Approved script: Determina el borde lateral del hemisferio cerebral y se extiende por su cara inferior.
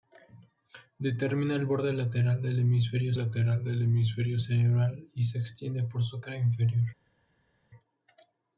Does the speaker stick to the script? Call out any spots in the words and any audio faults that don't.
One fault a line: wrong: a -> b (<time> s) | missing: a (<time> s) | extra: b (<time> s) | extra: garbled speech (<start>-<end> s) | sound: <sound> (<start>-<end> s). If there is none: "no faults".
extra: lateral del hemisferio (3.1 s)